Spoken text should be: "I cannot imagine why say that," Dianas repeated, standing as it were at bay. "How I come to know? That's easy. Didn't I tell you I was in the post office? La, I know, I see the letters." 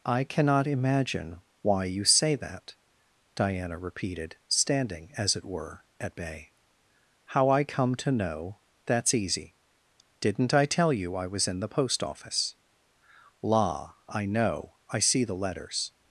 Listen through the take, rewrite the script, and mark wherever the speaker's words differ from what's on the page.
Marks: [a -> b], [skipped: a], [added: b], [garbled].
"I cannot imagine why [added: you] say that," [Dianas -> Diana] repeated, standing as it were at bay. "How I come to know? That's easy. Didn't I tell you I was in the post office? La, I know, I see the letters."